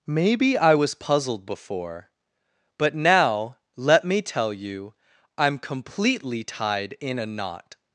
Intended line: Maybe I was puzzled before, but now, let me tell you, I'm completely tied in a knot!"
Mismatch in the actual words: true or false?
false